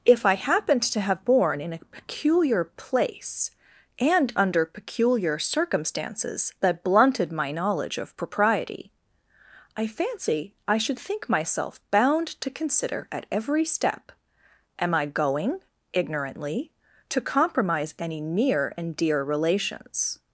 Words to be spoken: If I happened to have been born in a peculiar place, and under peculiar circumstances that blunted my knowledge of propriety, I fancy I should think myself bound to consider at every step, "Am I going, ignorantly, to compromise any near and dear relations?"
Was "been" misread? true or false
true